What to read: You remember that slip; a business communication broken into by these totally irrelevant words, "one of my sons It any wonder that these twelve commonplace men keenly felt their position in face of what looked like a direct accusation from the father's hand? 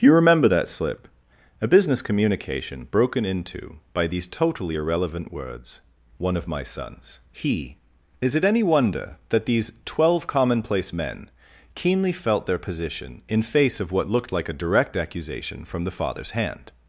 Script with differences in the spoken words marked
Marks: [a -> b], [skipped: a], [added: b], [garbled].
You remember that slip; a business communication broken into by these totally irrelevant words, "one of my sons [added: He Is] It any wonder that these twelve commonplace men keenly felt their position in face of what looked like a direct accusation from the father's hand?